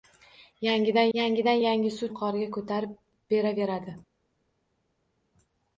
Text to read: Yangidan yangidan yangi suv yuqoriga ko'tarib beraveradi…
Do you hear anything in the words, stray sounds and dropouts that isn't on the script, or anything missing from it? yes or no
no